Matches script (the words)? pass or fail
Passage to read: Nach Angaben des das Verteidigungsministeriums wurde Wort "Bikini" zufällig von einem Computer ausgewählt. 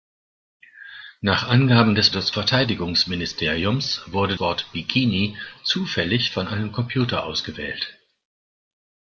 pass